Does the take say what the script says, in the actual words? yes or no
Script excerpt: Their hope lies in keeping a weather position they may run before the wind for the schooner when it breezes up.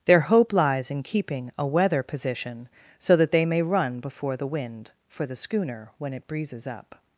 no